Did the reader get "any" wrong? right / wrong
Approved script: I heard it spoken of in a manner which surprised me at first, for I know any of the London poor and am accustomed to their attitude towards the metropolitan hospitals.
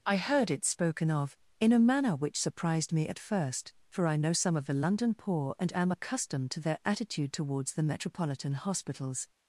wrong